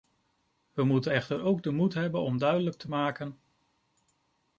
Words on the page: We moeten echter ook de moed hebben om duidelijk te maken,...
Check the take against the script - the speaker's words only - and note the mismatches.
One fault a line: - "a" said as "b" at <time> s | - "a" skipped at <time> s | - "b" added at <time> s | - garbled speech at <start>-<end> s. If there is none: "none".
none